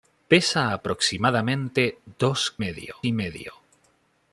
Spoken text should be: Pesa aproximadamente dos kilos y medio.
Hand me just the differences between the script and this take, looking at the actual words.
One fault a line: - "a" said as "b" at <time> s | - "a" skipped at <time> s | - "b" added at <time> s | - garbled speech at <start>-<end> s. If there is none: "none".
- "kilos" said as "medio" at 2.6 s